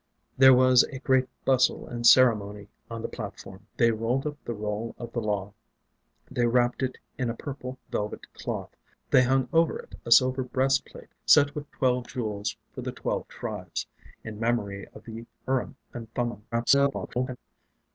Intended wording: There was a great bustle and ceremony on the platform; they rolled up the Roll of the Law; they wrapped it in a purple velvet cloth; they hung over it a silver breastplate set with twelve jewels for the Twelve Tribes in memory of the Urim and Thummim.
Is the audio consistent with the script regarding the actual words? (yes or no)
no